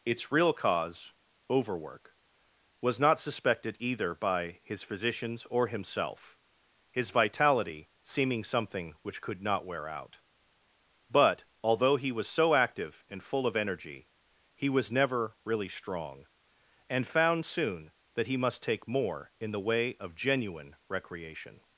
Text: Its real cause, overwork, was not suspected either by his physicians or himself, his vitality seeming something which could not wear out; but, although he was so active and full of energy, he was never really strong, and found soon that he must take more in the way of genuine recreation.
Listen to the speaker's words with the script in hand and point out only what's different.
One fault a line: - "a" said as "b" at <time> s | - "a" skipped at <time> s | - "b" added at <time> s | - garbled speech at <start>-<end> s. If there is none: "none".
none